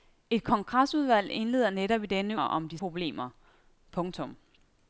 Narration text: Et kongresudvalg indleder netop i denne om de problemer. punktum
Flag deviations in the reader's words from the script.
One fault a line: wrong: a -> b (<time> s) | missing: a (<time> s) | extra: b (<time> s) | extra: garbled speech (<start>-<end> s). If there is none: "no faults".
no faults